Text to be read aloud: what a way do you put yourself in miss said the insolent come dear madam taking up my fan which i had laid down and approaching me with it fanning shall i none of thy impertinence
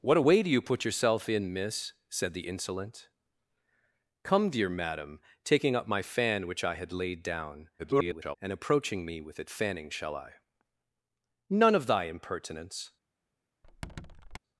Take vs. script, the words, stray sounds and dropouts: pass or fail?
fail